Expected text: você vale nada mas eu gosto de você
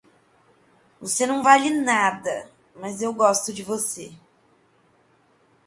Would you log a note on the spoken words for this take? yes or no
yes